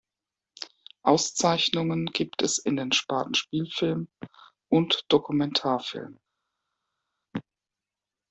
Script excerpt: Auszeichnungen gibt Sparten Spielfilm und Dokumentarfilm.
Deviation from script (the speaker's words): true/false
true